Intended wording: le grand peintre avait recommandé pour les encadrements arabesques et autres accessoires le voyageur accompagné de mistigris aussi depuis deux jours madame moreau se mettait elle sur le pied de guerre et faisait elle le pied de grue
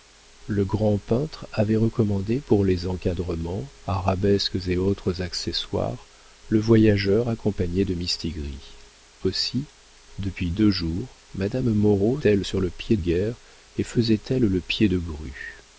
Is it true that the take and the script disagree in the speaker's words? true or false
true